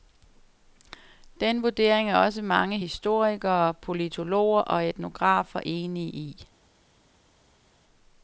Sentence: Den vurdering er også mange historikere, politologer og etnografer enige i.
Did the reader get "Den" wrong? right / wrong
right